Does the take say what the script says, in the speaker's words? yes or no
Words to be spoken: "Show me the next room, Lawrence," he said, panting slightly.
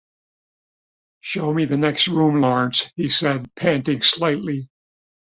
yes